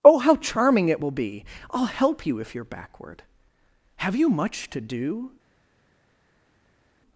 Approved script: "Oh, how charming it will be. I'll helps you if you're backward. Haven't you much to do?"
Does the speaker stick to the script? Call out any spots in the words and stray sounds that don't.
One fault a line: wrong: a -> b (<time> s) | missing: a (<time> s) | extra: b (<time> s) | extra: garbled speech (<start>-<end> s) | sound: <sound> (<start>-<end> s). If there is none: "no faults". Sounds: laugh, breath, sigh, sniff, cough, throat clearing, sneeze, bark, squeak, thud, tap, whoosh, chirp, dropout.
wrong: helps -> help (1.9 s)
wrong: Haven't -> Have (4.0 s)